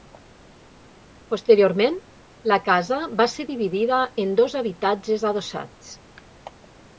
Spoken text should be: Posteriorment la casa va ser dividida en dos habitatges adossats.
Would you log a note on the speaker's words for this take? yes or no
no